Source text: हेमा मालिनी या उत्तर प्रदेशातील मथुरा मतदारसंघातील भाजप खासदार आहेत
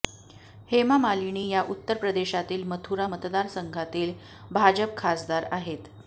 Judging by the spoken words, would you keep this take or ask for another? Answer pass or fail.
pass